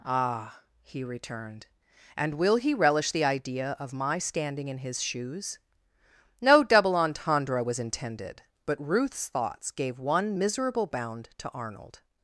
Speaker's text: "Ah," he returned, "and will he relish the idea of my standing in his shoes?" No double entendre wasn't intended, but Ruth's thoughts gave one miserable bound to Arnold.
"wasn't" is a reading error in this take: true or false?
true